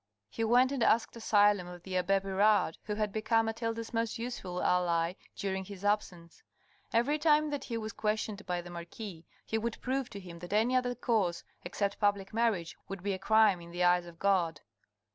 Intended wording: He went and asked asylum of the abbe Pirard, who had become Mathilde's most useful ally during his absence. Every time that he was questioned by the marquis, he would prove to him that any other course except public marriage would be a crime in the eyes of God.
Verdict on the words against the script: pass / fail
pass